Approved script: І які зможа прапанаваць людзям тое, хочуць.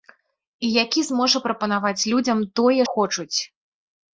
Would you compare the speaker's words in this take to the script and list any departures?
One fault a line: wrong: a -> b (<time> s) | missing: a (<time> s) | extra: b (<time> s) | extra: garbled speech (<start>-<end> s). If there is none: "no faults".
no faults